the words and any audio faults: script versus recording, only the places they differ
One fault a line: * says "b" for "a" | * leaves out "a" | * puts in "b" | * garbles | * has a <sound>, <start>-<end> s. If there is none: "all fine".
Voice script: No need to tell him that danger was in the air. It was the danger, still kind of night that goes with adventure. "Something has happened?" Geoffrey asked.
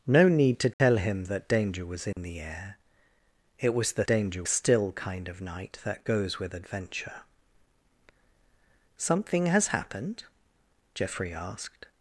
* has a dropout, 0.7-0.8 s
* has a dropout, 2.1-2.2 s